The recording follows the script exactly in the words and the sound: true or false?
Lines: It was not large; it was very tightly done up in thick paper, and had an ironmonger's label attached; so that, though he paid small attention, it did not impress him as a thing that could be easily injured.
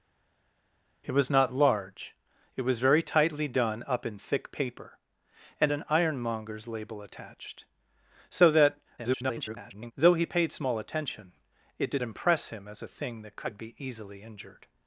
false